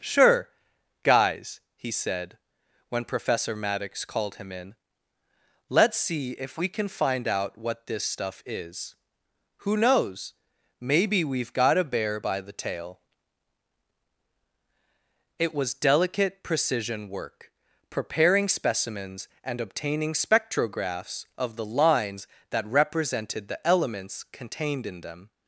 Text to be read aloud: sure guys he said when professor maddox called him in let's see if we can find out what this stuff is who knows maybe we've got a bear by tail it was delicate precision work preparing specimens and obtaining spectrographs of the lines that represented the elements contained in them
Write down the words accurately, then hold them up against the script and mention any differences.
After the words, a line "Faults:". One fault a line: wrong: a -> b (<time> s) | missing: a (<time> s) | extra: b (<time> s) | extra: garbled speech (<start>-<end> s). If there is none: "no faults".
sure guys he said when professor maddox called him in let's see if we can find out what this stuff is who knows maybe we've got a bear by the tail it was delicate precision work preparing specimens and obtaining spectrographs of the lines that represented the elements contained in them
Faults:
extra: the (12.4 s)